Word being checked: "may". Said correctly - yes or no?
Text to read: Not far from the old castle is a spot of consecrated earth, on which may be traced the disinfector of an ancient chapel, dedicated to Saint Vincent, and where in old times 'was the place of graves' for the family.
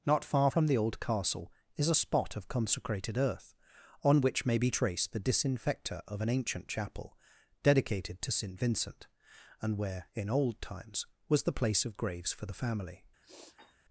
yes